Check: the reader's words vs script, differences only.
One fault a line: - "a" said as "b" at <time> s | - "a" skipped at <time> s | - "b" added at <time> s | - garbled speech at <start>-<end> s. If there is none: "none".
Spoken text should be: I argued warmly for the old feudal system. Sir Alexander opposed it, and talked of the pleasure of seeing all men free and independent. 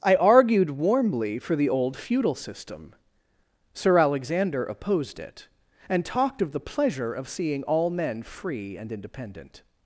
none